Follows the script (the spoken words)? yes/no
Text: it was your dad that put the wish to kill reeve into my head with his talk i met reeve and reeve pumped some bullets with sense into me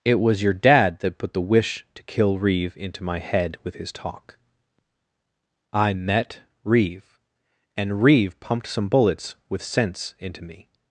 yes